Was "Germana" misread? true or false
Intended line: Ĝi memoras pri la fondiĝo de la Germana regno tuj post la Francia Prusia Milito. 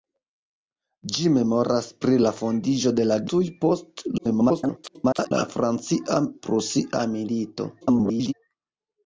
true